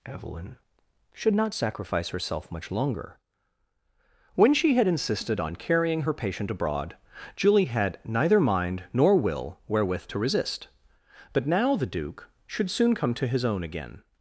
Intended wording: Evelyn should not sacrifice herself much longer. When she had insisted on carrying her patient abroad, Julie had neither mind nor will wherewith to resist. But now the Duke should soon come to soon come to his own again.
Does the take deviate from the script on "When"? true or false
false